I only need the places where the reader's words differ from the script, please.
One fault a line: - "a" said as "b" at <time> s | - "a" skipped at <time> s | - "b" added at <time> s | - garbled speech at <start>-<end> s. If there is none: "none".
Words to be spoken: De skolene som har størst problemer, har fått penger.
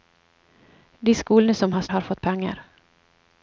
- "størst problemer" skipped at 1.8 s